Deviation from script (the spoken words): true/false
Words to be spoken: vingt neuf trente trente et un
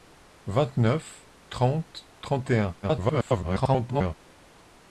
true